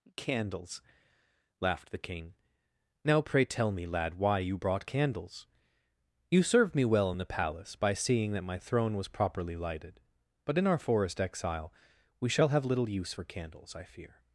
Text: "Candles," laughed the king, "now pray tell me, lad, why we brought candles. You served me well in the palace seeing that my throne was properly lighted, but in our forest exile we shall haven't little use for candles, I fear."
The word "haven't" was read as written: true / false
false